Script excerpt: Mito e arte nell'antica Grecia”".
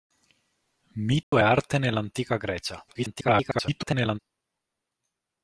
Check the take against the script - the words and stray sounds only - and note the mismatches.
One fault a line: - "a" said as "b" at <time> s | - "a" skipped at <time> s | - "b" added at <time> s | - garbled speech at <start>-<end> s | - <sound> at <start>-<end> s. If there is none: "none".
- dropout at 1.2-1.3 s
- garbled speech at 2.9-4.2 s